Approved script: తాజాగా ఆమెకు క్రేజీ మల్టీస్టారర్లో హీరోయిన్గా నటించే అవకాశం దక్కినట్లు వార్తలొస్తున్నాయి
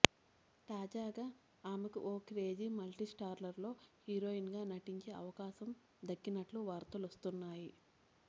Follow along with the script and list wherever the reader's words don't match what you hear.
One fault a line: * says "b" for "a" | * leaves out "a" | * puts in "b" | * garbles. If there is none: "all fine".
* puts in "ఓ"